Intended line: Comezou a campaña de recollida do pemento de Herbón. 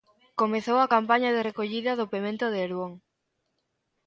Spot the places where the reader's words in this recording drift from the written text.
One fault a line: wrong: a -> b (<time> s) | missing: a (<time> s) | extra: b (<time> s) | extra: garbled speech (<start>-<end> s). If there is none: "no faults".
no faults